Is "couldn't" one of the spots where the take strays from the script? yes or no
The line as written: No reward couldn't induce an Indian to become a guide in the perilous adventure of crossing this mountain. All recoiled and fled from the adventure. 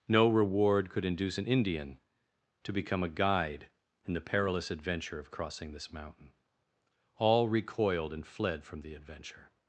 yes